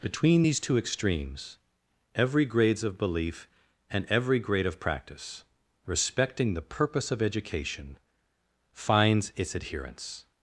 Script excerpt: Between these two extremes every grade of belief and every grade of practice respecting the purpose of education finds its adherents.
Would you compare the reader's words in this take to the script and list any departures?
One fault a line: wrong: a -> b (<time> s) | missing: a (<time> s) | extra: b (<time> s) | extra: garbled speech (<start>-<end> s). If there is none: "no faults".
wrong: grade -> grades (2.4 s)